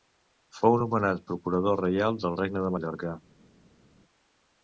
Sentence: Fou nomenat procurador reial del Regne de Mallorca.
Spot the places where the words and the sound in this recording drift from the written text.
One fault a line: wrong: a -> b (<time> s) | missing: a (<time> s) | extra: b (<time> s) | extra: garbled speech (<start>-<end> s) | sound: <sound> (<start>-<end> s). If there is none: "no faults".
no faults